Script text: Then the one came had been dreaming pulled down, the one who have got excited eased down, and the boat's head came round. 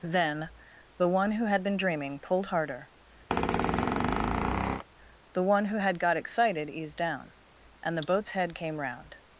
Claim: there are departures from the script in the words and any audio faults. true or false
true